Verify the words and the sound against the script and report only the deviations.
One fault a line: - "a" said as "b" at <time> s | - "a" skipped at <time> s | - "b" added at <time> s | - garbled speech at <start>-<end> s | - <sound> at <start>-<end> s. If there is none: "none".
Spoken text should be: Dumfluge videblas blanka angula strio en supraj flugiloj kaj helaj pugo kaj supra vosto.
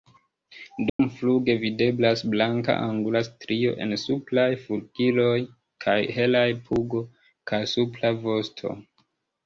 - dropout at 0.9-1.0 s